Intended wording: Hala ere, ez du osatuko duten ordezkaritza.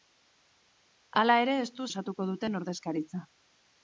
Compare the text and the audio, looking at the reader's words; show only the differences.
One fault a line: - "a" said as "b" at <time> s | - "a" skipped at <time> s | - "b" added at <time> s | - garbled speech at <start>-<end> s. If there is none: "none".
none